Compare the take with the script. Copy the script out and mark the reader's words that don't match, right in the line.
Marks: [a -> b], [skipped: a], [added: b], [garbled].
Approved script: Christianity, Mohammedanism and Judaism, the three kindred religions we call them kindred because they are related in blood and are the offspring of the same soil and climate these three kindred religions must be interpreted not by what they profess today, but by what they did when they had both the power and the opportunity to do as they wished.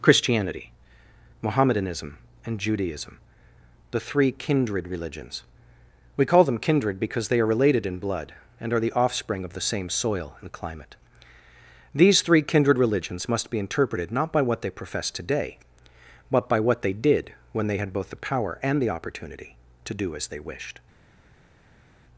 Christianity, Mohammedanism and Judaism, the three kindred religions we call them kindred because they are related in blood and are the offspring of the same soil and climate these three kindred religions must be interpreted not by what they profess today, but by what they did when they had both the power and the opportunity to do as they wished.